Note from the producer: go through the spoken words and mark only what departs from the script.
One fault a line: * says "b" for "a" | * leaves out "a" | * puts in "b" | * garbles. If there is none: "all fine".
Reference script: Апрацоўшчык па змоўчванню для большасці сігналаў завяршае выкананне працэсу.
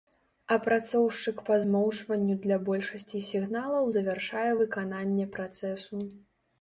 all fine